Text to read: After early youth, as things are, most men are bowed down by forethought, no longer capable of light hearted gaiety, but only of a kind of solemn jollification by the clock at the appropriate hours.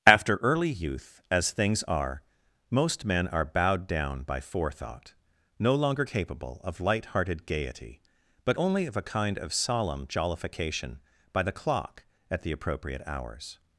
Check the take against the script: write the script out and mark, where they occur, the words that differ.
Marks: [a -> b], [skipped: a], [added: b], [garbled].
After early youth, as things are, most men are bowed down by forethought, no longer capable of light hearted gaiety, but only of a kind of solemn jollification by the clock at the appropriate hours.